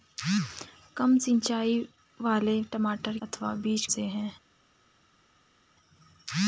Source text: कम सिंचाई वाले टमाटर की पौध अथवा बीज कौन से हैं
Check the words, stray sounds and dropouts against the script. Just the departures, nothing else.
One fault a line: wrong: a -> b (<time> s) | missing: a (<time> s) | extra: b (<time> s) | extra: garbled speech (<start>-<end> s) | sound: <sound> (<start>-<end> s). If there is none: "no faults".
missing: की पौध (3.2 s)
missing: कौन (3.9 s)